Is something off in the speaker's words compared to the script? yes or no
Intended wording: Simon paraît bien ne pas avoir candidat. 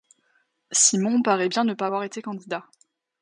yes